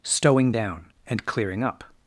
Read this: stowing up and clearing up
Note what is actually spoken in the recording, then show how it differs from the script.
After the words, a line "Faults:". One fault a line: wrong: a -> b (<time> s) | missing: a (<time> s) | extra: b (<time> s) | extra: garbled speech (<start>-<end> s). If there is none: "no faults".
stowing down and clearing up
Faults:
wrong: up -> down (0.5 s)